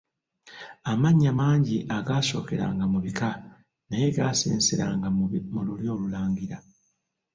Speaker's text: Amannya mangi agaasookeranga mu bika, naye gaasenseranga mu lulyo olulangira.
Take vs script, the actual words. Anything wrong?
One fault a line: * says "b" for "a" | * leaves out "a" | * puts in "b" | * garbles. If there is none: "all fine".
all fine